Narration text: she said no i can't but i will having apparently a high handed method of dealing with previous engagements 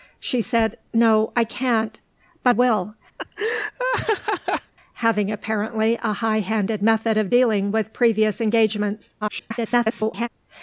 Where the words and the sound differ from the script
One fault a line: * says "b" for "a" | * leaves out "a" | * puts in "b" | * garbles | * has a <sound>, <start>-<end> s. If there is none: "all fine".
* leaves out "i"
* has a laugh, 3.2-4.7 s
* garbles